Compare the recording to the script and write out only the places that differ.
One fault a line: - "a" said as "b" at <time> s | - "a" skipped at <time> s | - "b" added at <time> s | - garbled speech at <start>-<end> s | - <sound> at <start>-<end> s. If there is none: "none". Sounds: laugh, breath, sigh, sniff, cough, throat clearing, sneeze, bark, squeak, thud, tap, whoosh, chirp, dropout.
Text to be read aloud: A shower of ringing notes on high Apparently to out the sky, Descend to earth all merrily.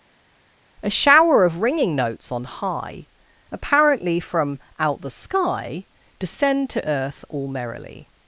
- "to" said as "from" at 4.2 s